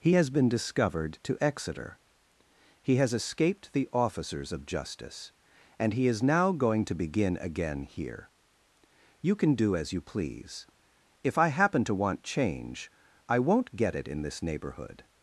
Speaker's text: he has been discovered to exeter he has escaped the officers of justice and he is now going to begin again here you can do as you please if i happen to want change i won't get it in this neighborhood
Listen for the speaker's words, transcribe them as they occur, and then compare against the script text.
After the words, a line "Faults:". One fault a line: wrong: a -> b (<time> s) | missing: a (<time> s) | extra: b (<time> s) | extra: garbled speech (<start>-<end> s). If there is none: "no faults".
he has been discovered to exeter he has escaped the officers of justice and he is now going to begin again here you can do as you please if i happen to want change i won't get it in this neighborhood
Faults:
no faults